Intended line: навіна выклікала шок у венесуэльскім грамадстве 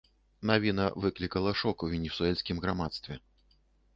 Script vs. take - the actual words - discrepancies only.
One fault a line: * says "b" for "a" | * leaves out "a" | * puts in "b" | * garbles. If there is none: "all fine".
all fine